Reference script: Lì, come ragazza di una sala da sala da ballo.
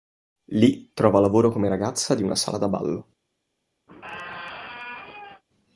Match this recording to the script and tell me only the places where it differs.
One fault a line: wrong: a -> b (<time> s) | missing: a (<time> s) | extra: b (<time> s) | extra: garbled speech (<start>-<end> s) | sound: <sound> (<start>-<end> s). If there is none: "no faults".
extra: trova lavoro (0.9 s)
missing: sala da (2.7 s)
sound: squeak (3.9-5.4 s)